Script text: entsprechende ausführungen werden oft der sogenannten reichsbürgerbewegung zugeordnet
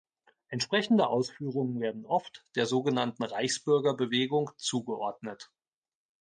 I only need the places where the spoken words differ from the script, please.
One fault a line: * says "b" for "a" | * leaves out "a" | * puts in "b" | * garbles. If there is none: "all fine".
all fine